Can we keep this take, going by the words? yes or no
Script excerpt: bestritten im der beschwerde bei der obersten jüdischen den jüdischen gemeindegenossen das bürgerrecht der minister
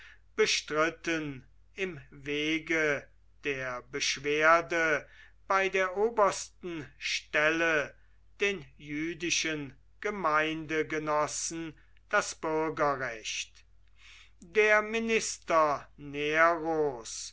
no